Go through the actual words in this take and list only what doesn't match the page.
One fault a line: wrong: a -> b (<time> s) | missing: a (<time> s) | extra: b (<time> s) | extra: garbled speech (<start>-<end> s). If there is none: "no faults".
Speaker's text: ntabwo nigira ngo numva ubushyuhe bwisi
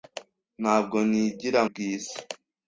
missing: ngo numva ubushyuhe (1.6 s)